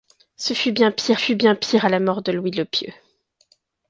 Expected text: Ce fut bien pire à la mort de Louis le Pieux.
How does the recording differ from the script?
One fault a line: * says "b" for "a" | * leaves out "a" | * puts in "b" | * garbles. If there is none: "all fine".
* puts in "fut bien pire"